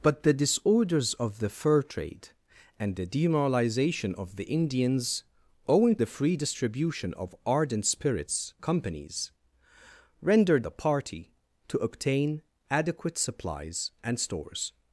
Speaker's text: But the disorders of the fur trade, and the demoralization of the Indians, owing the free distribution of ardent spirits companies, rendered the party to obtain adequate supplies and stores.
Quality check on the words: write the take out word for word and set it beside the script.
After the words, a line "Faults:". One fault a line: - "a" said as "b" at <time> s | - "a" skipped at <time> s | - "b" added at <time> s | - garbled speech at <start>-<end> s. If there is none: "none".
But the disorders of the fur trade, and the demoralization of the Indians, owing the free distribution of ardent spirits companies, rendered the party to obtain adequate supplies and stores.
Faults:
none